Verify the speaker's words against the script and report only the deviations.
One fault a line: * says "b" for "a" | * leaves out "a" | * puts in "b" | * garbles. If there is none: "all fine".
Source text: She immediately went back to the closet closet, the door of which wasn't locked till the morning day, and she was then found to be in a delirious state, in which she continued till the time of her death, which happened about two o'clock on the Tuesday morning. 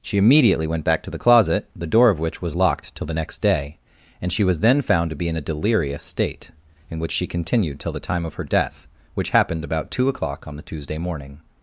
* leaves out "closet"
* says "was" for "wasn't"
* says "next" for "morning"